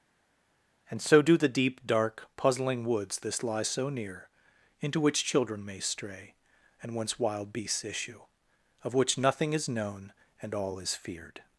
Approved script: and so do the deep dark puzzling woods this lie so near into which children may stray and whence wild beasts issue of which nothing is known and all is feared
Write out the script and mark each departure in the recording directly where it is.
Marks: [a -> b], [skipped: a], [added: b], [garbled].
and so do the deep dark puzzling woods this lie so near into which children may stray and whence wild beasts issue of which nothing is known and all is feared